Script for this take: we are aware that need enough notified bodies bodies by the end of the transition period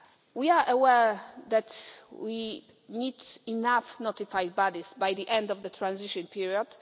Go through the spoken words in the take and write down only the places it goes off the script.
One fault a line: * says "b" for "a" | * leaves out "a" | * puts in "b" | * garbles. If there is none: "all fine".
* puts in "we"
* leaves out "bodies"